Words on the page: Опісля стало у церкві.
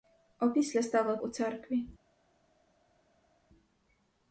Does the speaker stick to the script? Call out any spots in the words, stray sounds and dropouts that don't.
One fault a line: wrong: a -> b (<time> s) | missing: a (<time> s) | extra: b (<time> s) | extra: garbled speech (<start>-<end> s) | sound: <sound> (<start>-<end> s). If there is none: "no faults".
no faults